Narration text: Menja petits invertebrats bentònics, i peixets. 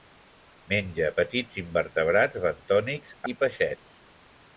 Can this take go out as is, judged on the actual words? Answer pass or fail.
pass